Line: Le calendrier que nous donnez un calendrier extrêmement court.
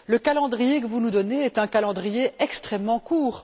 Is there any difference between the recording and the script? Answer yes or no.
yes